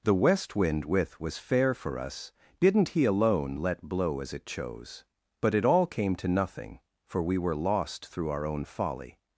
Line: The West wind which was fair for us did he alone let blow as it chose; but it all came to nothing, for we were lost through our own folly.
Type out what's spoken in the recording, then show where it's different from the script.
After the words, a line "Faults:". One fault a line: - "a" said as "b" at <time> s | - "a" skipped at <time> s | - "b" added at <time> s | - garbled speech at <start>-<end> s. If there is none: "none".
The West wind with was fair for us didn't he alone let blow as it chose; but it all came to nothing, for we were lost through our own folly.
Faults:
- "which" said as "with" at 0.8 s
- "did" said as "didn't" at 2.6 s